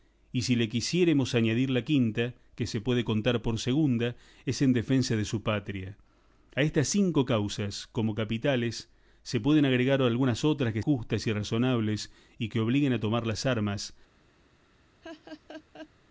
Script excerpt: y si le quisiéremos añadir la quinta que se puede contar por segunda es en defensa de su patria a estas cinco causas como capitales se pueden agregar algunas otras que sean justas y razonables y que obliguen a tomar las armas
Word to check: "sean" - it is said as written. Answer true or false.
false